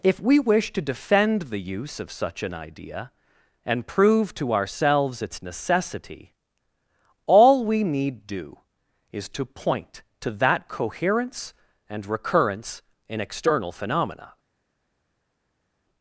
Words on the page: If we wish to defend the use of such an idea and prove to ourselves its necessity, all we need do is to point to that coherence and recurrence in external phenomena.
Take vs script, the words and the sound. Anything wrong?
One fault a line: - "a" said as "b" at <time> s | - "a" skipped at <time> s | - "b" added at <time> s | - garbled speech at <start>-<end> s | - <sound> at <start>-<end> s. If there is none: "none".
none